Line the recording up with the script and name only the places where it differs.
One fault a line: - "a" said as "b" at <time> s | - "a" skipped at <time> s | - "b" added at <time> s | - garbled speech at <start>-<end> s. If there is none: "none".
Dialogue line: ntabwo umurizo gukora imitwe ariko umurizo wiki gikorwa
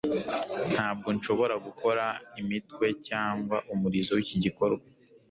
- "umurizo" said as "nshobora" at 1.2 s
- "ariko" said as "cyangwa" at 3.1 s